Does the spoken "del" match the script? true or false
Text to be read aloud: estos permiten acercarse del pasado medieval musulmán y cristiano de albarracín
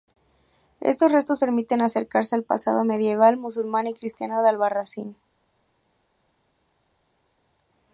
false